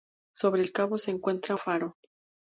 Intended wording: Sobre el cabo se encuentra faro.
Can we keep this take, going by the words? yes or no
yes